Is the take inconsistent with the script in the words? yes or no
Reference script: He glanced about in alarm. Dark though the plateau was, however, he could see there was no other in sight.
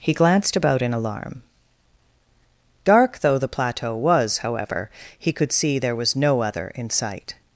no